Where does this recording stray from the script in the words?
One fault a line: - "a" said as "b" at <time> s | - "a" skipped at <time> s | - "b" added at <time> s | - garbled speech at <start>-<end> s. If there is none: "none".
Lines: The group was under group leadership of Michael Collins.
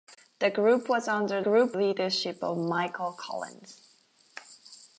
none